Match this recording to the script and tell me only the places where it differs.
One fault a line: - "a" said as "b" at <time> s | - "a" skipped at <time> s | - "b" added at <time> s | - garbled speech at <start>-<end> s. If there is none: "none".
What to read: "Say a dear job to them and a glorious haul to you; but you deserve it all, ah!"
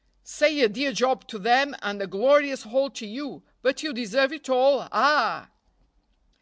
none